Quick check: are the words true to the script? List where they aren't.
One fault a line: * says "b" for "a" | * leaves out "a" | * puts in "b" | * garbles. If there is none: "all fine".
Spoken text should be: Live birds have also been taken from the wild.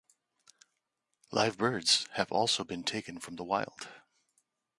all fine